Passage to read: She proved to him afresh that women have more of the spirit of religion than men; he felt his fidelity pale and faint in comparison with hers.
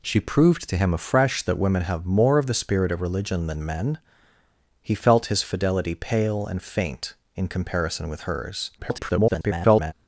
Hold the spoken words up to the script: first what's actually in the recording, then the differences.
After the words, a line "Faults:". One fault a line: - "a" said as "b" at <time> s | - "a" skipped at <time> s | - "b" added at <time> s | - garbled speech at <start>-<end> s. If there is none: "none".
She proved to him afresh that women have more of the spirit of religion than men; he felt his fidelity pale and faint in comparison with hers. [garbled]
Faults:
- garbled speech at 8.8-9.9 s